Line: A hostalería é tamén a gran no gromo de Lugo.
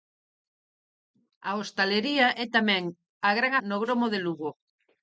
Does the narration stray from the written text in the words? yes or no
no